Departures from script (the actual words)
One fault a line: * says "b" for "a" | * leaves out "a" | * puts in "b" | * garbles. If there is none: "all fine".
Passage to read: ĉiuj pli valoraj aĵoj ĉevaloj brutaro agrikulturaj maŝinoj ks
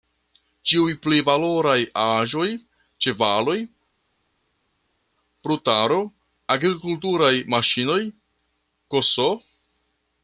all fine